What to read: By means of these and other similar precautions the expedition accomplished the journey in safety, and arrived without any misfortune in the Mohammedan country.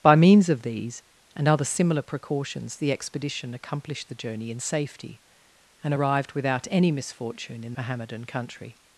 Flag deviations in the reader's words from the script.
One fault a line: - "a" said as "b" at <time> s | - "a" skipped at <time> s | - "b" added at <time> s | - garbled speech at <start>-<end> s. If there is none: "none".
- "the" skipped at 7.7 s